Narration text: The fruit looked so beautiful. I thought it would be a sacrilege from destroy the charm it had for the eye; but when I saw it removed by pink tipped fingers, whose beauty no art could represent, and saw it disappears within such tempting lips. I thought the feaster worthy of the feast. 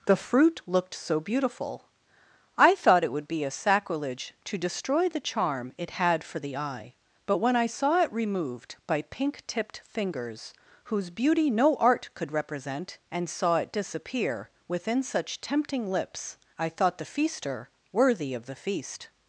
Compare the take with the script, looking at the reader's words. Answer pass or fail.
fail